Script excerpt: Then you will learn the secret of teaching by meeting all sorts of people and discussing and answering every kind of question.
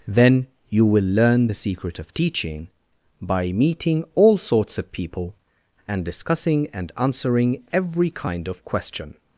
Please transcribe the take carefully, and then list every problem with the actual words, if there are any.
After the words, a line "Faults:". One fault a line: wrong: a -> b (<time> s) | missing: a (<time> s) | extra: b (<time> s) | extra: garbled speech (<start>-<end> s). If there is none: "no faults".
Then you will learn the secret of teaching by meeting all sorts of people and discussing and answering every kind of question.
Faults:
no faults